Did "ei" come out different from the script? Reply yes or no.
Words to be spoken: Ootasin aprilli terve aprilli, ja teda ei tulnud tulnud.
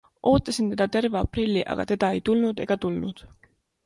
no